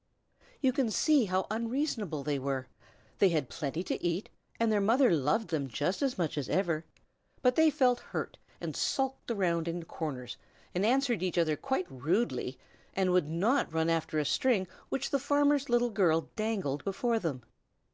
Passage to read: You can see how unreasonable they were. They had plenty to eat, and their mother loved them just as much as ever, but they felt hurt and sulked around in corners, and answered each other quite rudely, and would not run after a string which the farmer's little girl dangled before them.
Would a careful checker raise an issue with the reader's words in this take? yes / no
no